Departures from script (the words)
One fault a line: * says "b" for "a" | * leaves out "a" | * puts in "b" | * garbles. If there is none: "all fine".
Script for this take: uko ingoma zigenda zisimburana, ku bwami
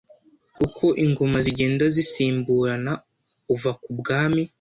* puts in "uva"